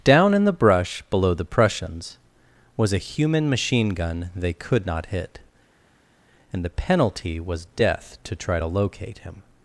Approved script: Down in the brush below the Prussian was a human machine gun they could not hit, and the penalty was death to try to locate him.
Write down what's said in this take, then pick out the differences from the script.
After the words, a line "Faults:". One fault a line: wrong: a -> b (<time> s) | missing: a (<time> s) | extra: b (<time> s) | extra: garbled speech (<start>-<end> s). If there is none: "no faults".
Down in the brush below the Prussians was a human machine gun they could not hit, and the penalty was death to try to locate him.
Faults:
wrong: Prussian -> Prussians (1.4 s)